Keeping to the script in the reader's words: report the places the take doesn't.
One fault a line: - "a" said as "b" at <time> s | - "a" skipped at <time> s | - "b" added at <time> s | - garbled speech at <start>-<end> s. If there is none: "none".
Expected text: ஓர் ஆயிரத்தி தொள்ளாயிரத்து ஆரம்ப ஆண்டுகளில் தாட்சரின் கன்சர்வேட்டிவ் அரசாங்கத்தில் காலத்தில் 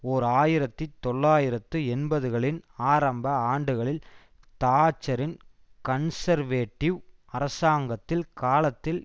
- "எண்பதுகளின்" added at 1.9 s